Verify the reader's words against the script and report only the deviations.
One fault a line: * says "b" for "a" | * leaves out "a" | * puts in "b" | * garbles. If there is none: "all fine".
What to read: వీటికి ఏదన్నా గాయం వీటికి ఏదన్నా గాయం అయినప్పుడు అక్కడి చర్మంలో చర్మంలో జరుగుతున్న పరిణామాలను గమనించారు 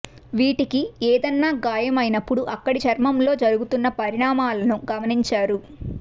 * leaves out "వీటికి ఏదన్నా గాయం"
* leaves out "చర్మంలో"